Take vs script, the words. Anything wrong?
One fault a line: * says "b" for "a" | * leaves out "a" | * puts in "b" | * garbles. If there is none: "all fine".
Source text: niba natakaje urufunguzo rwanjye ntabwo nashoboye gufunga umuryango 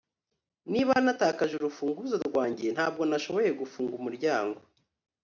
all fine